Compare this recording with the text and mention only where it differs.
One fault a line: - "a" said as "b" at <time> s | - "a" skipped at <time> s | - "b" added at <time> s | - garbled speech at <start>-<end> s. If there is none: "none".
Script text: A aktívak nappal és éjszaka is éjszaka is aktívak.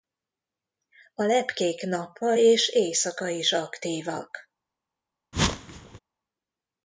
- "aktívak" said as "lepkék" at 1.2 s
- "éjszaka is" skipped at 3.5 s